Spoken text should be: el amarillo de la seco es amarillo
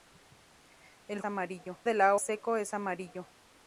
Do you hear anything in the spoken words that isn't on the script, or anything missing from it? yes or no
no